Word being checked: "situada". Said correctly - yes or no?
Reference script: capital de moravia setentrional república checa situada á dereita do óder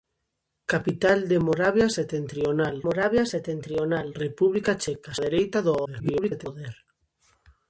no